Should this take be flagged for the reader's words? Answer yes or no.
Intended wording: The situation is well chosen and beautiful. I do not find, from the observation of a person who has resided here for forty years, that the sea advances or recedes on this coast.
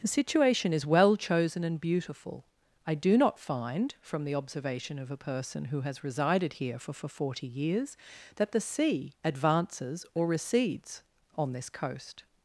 yes